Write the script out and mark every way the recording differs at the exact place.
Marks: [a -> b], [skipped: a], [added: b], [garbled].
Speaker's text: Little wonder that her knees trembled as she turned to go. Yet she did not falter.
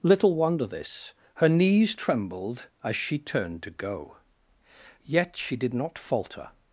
Little wonder [that -> this] her knees trembled as she turned to go. Yet she did not falter.